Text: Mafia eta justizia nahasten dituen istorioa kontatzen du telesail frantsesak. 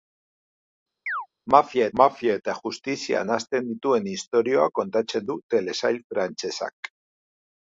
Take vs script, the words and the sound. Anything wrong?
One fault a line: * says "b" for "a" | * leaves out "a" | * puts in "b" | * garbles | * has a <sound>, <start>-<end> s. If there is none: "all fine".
* has a chirp, 1.1-1.3 s
* puts in "mafia"